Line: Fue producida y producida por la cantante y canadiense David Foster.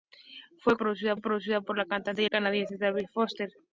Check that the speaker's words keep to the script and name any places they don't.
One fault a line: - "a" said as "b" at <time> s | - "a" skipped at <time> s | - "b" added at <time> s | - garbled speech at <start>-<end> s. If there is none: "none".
none